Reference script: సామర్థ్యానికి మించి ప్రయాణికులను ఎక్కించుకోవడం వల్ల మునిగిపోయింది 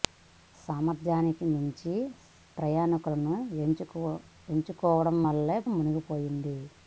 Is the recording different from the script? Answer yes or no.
no